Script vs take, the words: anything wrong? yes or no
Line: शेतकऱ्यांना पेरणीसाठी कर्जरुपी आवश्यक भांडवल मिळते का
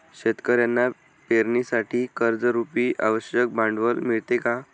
no